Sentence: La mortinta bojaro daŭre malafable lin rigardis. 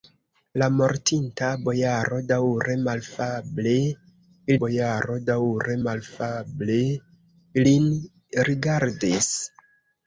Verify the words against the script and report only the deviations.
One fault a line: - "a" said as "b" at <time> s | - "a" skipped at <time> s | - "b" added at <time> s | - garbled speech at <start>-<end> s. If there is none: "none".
- "bojaro daŭre malafable" added at 4.6 s